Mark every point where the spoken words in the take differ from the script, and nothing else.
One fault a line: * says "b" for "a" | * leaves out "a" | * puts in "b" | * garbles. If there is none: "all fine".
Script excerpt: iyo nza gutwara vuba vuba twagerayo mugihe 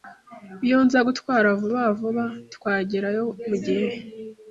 all fine